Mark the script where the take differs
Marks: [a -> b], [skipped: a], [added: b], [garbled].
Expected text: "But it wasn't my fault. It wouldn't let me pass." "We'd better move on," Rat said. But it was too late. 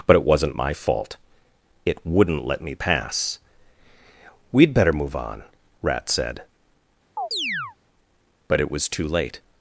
"But it wasn't my fault. It wouldn't let me pass." "We'd better move on," Rat said. But it was too late.